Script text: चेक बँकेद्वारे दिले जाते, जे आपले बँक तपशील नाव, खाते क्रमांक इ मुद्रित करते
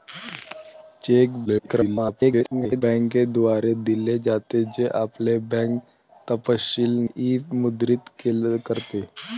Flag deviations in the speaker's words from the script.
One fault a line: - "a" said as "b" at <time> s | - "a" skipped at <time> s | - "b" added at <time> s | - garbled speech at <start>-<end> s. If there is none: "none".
- garbled speech at 1.5-2.8 s
- "नाव खाते क्रमांक" skipped at 7.0 s